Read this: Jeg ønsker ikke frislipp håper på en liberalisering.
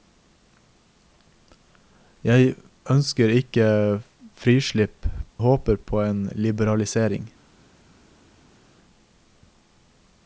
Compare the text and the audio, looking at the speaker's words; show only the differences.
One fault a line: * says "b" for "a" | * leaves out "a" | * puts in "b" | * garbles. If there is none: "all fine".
all fine